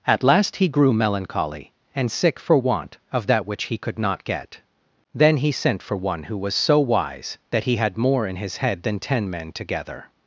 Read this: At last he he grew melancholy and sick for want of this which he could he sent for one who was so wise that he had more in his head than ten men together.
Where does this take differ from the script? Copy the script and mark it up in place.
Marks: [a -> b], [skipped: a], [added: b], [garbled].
At last he [skipped: he] grew melancholy and sick for want of [this -> that] which he could [added: not get Then] he sent for one who was so wise that he had more in his head than ten men together.